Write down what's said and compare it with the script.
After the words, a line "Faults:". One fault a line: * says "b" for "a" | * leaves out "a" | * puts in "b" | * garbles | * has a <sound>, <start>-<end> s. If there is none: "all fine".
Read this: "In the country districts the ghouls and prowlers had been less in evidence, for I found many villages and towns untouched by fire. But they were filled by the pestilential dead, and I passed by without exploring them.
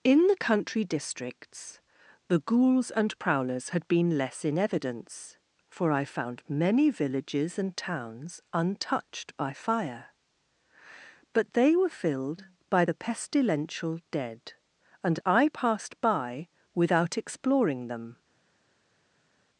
"In the country districts the ghouls and prowlers had been less in evidence, for I found many villages and towns untouched by fire. But they were filled by the pestilential dead, and I passed by without exploring them.
Faults:
all fine